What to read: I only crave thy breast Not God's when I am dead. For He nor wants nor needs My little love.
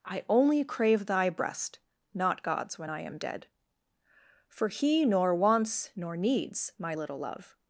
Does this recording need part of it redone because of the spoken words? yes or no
no